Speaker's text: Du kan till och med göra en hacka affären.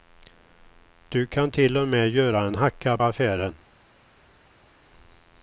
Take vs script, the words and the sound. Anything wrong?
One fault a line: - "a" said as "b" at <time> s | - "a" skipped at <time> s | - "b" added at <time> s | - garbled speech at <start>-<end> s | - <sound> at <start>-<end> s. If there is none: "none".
none